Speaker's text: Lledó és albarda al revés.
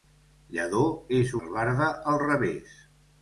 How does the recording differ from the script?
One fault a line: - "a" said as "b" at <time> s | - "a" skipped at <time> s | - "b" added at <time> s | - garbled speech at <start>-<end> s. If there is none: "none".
none